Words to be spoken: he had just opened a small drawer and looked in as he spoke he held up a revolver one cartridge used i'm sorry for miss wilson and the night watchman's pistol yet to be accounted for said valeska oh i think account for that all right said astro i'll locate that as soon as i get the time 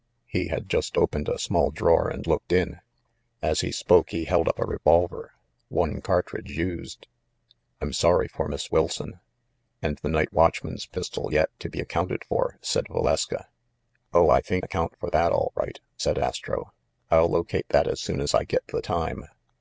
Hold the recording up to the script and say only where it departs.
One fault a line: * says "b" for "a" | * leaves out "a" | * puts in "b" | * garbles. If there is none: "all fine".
all fine